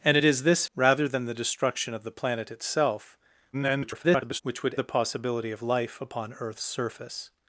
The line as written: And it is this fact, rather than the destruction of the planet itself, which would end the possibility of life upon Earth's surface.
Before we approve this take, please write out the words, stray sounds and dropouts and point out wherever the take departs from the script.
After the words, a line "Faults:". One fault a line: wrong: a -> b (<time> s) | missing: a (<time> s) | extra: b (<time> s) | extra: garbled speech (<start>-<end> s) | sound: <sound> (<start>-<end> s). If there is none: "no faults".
And it is this rather than the destruction of the planet itself, [garbled] which would the possibility of life upon Earth's surface.
Faults:
missing: fact (0.6 s)
extra: garbled speech (3.5-4.4 s)
missing: end (4.8 s)